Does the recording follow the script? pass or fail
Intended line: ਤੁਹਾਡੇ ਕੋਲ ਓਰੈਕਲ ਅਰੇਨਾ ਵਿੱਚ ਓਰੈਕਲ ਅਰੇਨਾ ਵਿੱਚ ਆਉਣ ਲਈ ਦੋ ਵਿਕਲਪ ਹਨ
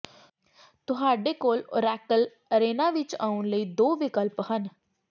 fail